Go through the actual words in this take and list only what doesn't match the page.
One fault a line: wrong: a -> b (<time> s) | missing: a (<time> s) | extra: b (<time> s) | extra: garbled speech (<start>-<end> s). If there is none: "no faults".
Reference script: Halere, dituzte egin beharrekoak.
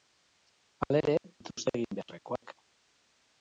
no faults